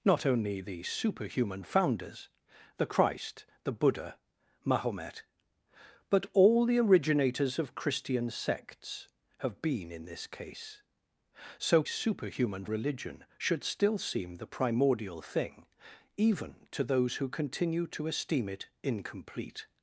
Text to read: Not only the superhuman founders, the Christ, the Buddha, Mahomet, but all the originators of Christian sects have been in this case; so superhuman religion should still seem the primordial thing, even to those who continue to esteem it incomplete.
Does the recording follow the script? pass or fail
pass